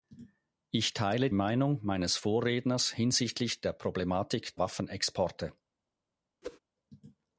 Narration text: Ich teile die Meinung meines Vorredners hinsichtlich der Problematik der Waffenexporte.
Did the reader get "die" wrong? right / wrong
wrong